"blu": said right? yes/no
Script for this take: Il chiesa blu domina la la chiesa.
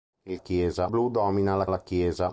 yes